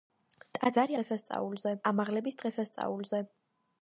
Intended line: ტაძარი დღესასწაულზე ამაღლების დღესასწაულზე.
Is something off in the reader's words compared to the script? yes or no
no